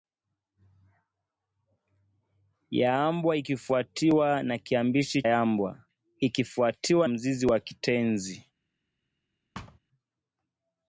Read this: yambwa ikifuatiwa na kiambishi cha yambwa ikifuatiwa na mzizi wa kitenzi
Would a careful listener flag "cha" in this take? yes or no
yes